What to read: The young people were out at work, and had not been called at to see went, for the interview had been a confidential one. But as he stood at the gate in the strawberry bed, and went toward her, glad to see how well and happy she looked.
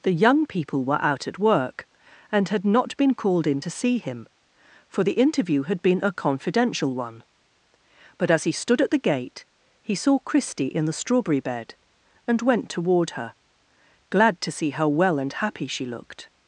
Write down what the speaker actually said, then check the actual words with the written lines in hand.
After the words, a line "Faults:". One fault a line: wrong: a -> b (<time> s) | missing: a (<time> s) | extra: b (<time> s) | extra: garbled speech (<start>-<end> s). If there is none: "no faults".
The young people were out at work, and had not been called in to see him, for the interview had been a confidential one. But as he stood at the gate he saw Christie in the strawberry bed, and went toward her, glad to see how well and happy she looked.
Faults:
wrong: at -> in (3.5 s)
wrong: went -> him (4.0 s)
extra: he saw Christie (9.8 s)